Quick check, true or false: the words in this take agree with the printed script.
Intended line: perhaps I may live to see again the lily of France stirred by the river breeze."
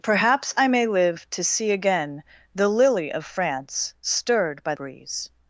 false